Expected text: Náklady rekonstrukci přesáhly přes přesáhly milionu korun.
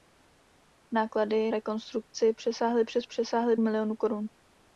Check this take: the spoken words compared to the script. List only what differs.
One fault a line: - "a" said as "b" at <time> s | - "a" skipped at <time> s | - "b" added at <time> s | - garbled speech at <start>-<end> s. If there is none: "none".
none